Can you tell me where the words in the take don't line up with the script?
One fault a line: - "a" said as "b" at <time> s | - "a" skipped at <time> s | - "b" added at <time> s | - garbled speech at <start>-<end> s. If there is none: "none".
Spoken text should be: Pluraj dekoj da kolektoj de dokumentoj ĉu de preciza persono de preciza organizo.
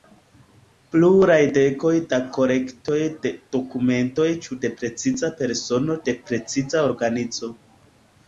none